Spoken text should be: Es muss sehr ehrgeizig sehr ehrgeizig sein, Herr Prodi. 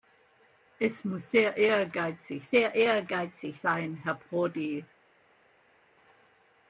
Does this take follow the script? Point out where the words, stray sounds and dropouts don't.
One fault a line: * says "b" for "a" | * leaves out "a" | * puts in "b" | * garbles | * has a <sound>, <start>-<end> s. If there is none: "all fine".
all fine